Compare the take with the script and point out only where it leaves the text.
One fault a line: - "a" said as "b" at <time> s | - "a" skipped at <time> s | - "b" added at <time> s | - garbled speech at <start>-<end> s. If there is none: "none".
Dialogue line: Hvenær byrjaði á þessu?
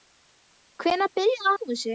none